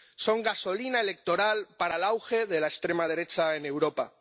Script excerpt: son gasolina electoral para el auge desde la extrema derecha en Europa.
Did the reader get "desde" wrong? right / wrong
wrong